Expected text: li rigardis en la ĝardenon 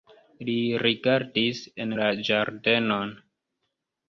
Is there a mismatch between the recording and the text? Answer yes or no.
no